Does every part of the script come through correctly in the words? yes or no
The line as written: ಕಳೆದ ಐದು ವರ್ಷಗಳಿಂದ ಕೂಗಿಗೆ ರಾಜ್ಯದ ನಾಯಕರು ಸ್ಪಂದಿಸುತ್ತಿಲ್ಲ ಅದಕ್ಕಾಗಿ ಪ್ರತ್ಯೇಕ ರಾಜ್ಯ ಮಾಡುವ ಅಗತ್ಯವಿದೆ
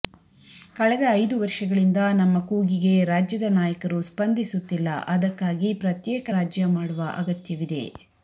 no